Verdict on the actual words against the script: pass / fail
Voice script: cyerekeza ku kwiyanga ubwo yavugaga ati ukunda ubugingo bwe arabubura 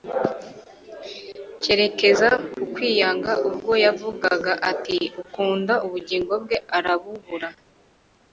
pass